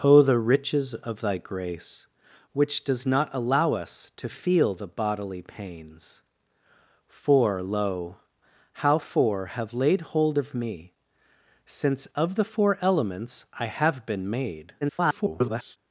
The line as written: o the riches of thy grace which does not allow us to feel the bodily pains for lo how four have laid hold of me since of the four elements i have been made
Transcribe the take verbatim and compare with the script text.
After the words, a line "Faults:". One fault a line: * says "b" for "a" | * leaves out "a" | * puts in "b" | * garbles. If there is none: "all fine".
o the riches of thy grace which does not allow us to feel the bodily pains for lo how four have laid hold of me since of the four elements i have been made [garbled]
Faults:
* garbles